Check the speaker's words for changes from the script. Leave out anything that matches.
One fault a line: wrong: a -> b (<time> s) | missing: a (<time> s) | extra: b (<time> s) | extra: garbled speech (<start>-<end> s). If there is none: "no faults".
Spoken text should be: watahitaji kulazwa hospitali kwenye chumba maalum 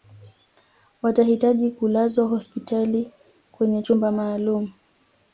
no faults